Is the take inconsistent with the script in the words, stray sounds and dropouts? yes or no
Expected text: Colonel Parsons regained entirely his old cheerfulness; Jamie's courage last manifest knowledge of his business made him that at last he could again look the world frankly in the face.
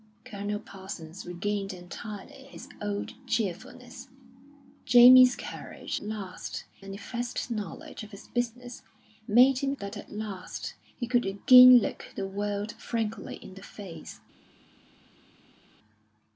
no